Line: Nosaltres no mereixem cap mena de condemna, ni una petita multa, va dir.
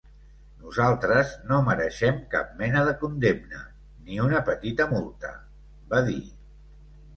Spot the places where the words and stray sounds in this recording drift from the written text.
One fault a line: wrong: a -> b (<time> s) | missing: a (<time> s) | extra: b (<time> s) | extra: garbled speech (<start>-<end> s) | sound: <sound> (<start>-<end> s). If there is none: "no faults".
no faults